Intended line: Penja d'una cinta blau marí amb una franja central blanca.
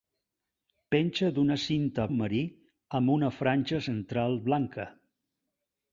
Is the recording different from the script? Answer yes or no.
yes